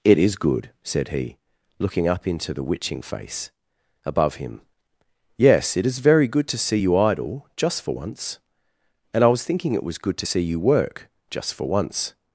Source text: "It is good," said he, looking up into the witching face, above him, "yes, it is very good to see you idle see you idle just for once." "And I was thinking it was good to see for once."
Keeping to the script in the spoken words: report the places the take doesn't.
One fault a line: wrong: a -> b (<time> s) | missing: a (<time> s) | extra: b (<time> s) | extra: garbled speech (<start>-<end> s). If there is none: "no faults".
missing: see you idle (7.5 s)
extra: you work just (10.4 s)